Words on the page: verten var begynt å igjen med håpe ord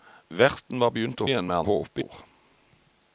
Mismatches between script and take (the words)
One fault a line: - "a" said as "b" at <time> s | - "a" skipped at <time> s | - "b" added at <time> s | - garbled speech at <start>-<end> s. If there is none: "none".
none